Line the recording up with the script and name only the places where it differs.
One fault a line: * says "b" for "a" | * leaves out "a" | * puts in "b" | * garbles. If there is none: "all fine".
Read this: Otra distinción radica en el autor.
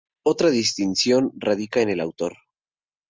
all fine